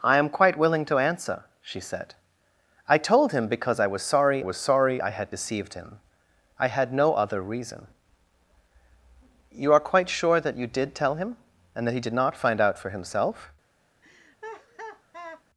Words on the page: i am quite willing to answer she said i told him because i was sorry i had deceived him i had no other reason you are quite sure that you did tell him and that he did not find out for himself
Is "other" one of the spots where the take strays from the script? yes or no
no